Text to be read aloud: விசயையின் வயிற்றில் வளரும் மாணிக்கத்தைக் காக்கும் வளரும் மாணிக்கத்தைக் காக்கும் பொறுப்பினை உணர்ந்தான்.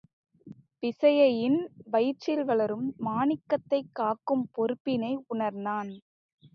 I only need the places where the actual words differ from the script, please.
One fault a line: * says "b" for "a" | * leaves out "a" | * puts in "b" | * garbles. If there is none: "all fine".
* leaves out "வளரும் மாணிக்கத்தைக் காக்கும்"